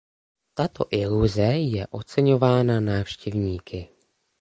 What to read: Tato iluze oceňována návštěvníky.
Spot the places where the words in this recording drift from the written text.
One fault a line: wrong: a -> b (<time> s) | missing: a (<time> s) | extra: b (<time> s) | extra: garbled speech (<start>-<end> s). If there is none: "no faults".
extra: je (1.4 s)